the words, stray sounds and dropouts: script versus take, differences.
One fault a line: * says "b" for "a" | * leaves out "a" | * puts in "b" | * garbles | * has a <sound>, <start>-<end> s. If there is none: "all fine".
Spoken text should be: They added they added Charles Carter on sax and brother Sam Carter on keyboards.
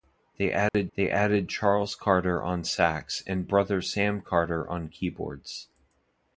* has a dropout, 0.7-0.7 s